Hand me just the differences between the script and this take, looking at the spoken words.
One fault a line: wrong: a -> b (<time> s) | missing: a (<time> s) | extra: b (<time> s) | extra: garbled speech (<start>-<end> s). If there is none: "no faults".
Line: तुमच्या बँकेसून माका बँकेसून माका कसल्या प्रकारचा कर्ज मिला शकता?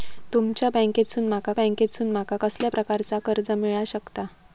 no faults